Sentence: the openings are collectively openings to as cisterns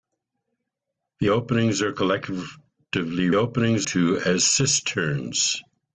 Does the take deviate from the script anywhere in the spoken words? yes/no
no